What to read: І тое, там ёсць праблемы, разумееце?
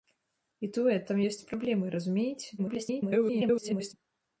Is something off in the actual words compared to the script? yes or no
yes